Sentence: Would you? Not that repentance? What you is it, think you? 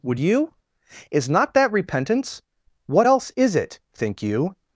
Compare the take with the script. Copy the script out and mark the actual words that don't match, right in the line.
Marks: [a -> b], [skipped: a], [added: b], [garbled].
Would you? [added: Is] Not that repentance? What [you -> else] is it, think you?